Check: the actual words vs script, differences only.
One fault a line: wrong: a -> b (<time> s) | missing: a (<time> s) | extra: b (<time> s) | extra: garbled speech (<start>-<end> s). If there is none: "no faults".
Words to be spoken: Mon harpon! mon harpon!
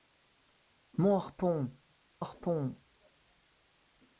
missing: mon (1.8 s)